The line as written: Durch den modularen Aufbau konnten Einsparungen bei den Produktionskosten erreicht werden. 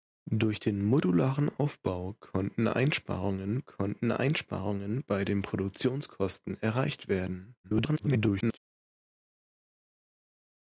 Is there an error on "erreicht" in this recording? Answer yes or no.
no